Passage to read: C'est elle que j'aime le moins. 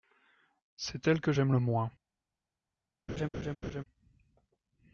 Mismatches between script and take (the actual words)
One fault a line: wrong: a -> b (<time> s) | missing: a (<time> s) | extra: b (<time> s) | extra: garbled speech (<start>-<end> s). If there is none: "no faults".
no faults